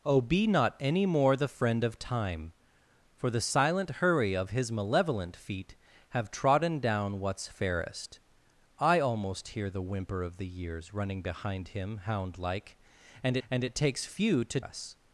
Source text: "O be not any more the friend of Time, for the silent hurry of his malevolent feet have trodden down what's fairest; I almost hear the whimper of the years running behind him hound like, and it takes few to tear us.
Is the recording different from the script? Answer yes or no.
yes